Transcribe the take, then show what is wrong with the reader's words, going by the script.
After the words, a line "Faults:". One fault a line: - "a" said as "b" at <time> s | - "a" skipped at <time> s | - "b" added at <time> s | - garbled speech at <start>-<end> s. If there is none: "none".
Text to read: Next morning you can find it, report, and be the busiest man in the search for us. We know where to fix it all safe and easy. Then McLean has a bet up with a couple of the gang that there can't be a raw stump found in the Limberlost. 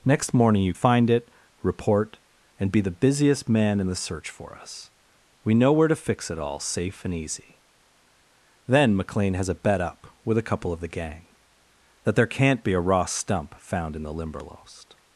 Next morning you find it, report, and be the busiest man in the search for us. We know where to fix it all safe and easy. Then McLean has a bet up with a couple of the gang that there can't be a raw stump found in the Limberlost.
Faults:
- "can" skipped at 0.7 s